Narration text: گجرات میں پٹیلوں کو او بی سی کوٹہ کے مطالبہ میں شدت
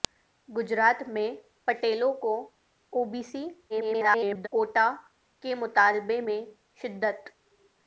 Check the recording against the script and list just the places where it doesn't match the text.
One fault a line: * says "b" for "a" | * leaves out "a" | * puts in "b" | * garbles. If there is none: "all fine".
* garbles